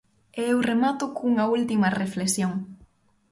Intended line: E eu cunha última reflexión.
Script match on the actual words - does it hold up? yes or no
no